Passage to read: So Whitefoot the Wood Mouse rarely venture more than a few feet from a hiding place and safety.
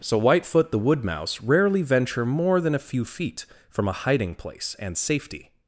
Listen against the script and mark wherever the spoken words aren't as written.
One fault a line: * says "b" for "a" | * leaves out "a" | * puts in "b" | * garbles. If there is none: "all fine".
all fine